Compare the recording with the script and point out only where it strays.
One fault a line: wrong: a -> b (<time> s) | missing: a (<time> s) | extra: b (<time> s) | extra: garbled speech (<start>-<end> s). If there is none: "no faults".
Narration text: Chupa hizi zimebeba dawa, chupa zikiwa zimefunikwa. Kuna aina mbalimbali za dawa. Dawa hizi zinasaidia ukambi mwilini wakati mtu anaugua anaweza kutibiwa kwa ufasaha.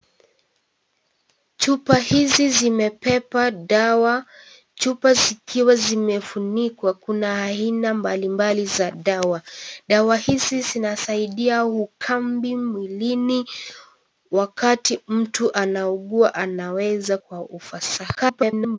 missing: kutibiwa (17.2 s)
extra: garbled speech (18.1-18.8 s)